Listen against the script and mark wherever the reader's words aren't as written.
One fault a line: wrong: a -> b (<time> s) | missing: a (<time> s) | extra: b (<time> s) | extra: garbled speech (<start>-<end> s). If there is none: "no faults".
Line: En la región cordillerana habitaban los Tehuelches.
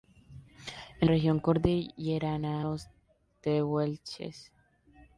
missing: la (1.1 s)
missing: habitaban (2.6 s)